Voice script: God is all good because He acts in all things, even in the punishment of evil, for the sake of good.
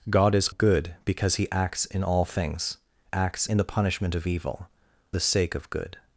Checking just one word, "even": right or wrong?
wrong